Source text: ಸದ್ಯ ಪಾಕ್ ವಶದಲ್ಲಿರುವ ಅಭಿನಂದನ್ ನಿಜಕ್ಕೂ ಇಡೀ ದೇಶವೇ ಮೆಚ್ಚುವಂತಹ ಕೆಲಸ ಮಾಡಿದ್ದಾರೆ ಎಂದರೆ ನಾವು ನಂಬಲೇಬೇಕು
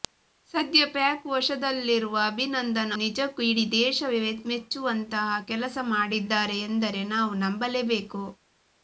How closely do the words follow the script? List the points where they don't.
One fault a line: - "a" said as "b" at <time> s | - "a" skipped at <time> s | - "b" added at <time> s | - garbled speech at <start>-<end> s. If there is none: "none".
none